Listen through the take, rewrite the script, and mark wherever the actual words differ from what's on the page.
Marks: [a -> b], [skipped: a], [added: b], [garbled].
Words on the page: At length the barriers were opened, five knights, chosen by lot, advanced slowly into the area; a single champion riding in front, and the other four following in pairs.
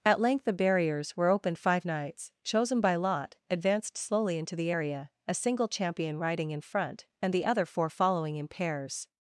At length the barriers were opened, five knights, chosen by lot, advanced slowly into the area; a single champion riding in front, and the other four following in pairs.